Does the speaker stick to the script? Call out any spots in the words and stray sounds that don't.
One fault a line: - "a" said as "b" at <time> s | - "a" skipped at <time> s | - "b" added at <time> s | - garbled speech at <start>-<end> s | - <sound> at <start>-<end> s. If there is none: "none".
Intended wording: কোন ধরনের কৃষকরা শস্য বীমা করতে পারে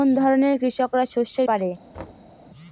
- "বীমা করতে" skipped at 1.4 s
- thud at 1.9-2.3 s